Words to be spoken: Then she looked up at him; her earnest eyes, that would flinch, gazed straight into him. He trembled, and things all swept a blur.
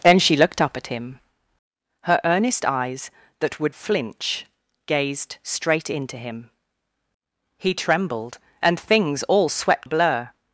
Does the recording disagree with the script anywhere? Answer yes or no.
no